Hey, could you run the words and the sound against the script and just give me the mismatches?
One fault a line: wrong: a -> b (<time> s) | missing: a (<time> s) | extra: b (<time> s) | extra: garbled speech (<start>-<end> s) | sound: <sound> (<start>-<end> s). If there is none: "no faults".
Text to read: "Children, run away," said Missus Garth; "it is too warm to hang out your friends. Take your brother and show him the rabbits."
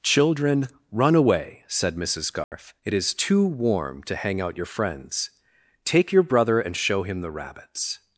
sound: dropout (2.4-2.5 s)